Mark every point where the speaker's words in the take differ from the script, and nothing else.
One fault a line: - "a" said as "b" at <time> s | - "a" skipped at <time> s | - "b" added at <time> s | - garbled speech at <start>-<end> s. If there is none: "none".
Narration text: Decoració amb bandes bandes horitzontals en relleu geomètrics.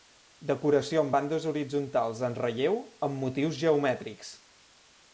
- "bandes" skipped at 1.5 s
- "amb motius" added at 3.1 s